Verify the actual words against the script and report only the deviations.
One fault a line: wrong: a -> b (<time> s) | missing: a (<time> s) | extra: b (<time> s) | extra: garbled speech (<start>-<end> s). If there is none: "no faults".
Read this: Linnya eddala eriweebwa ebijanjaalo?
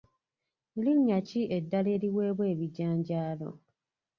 extra: ki (1.3 s)